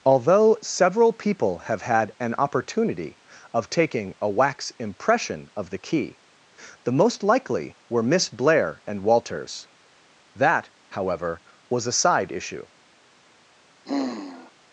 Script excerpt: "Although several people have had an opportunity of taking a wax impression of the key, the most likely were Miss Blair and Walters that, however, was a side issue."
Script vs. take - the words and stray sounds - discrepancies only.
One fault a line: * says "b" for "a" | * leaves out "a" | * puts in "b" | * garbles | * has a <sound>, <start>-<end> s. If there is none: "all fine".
* has a sigh, 13.9-14.5 s